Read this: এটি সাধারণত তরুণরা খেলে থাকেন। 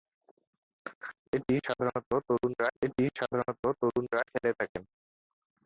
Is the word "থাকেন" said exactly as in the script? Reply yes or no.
yes